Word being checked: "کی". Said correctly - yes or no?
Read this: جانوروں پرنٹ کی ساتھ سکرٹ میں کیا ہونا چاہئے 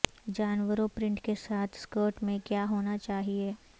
no